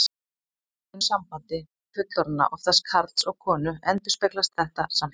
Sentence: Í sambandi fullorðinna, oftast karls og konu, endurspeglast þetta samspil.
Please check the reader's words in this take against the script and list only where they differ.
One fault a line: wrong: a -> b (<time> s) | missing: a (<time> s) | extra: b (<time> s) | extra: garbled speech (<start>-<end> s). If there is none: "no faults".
no faults